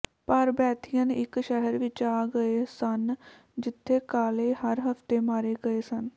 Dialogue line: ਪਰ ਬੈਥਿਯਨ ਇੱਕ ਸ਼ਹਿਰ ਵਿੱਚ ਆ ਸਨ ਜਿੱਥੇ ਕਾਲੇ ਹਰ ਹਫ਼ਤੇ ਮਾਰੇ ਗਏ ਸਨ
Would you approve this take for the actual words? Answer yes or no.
no